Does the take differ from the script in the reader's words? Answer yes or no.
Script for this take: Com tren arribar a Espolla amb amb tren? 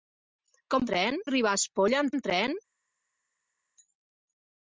no